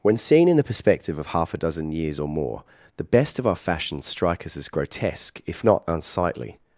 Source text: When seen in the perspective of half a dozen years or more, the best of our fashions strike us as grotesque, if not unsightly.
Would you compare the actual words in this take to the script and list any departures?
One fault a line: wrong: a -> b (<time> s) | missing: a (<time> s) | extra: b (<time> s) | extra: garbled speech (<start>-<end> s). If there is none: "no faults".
no faults